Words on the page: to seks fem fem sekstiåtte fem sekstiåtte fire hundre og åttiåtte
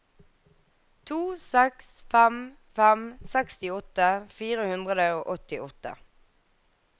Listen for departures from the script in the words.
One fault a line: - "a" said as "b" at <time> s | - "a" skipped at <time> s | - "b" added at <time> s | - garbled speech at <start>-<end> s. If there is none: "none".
- "fem sekstiåtte" skipped at 4.1 s